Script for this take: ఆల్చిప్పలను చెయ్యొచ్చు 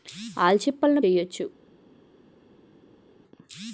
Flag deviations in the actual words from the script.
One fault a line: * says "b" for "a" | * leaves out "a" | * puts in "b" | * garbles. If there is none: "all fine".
all fine